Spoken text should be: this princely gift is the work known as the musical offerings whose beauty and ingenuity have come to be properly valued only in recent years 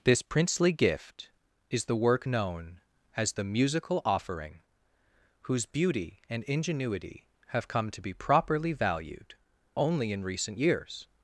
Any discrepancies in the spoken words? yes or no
yes